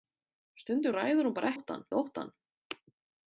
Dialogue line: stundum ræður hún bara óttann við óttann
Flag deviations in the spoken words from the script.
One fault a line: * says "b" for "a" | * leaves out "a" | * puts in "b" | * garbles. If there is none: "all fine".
all fine